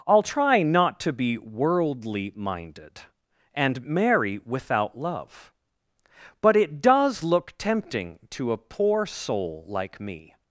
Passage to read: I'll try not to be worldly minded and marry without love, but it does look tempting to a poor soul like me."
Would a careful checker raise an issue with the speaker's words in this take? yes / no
no